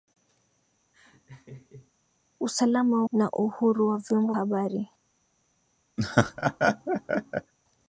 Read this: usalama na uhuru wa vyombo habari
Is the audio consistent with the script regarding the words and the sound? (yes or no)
no